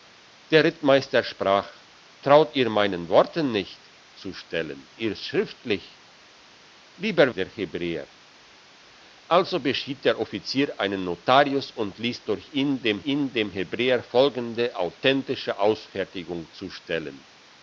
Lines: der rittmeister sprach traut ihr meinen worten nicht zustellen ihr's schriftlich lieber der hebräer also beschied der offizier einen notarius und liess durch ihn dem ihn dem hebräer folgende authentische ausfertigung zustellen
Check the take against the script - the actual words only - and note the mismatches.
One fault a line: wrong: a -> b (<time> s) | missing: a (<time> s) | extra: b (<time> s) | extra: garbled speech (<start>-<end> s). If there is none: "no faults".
no faults